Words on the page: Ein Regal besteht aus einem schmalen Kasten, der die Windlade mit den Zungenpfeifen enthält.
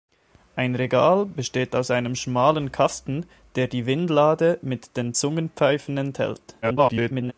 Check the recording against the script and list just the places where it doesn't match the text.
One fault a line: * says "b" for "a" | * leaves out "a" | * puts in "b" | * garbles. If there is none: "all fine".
* garbles